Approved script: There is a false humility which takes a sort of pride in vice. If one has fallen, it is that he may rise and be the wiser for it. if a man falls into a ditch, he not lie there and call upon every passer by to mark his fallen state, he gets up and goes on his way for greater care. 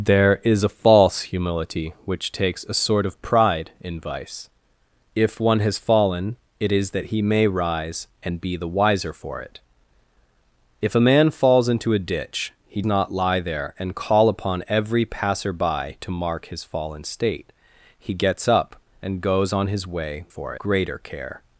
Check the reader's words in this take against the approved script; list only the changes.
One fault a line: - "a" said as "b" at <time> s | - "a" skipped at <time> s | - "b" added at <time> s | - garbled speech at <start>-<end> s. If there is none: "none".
none